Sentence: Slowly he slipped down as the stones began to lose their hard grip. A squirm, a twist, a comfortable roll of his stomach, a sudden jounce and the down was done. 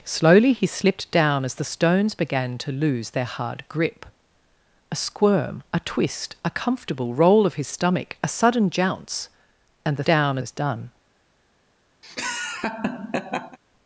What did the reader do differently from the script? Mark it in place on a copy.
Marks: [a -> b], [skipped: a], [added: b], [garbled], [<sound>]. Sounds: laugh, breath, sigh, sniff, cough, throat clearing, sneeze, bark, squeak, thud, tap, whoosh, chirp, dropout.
Slowly he slipped down as the stones began to lose their hard grip. A squirm, a twist, a comfortable roll of his stomach, a sudden jounce and the down was done. [laugh]